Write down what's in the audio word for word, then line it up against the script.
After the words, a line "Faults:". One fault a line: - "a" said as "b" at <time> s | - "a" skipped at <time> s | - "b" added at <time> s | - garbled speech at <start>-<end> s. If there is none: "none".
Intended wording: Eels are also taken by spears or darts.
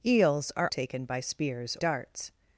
Eels are taken by spears darts.
Faults:
- "also" skipped at 0.7 s
- "or" skipped at 1.8 s